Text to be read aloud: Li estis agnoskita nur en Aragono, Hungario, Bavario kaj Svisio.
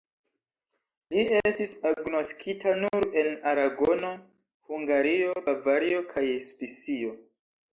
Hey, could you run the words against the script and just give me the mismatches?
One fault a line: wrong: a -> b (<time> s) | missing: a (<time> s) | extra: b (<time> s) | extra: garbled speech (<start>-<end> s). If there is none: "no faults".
no faults